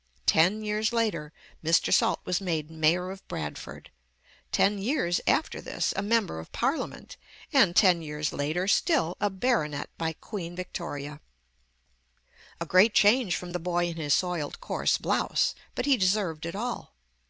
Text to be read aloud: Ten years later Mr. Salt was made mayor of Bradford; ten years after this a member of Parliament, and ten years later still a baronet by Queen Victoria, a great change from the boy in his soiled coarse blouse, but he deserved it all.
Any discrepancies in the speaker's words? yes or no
no